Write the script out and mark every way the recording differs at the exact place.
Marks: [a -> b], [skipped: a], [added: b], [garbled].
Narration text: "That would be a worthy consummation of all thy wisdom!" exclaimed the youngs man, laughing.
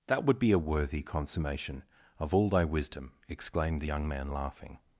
"That would be a worthy consummation of all thy wisdom!" exclaimed the [youngs -> young] man, laughing.